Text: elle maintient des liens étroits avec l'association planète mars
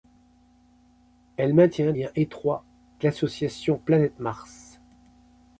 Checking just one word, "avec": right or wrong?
wrong